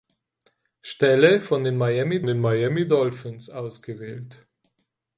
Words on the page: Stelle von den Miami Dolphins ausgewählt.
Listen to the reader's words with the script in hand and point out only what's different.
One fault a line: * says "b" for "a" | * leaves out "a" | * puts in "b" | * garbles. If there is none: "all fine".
* puts in "den Miami"